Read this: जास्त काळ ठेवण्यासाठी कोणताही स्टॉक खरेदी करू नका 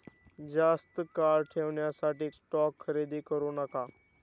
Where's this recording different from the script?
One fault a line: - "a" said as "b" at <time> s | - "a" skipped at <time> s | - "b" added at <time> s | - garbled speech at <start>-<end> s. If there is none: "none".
- "कोणताही" skipped at 2.3 s